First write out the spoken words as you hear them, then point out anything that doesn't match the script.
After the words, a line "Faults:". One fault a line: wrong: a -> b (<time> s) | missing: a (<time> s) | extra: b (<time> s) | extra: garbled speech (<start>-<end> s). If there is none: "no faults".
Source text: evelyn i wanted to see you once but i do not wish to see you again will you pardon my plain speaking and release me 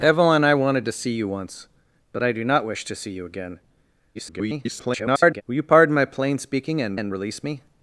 evelyn i wanted to see you once but i do not wish to see you again [garbled] will you pardon my plain speaking and and release me
Faults:
extra: garbled speech (4.1-5.4 s)
extra: and (6.9 s)